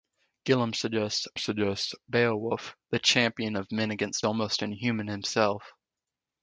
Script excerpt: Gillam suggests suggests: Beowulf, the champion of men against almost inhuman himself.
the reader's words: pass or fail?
pass